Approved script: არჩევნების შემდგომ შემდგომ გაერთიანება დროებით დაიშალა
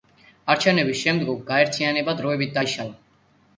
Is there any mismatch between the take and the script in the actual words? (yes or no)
yes